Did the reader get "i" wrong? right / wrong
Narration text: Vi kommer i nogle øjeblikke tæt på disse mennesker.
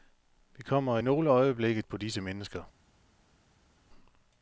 wrong